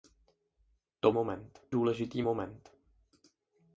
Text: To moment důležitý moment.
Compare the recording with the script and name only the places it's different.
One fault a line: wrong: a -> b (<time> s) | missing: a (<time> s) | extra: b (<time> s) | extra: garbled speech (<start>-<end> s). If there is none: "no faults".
no faults